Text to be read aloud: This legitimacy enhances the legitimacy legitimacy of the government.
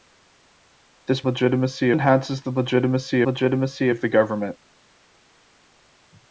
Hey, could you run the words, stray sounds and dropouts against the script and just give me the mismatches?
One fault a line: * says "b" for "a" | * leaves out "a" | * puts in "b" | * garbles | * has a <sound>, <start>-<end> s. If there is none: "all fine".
all fine